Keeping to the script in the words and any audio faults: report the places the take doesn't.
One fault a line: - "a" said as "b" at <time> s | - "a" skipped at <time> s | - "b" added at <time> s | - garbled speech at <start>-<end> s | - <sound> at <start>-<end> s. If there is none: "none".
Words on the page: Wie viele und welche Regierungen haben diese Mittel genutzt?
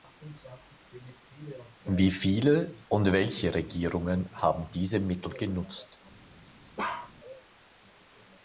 - bark at 6.8-7.1 s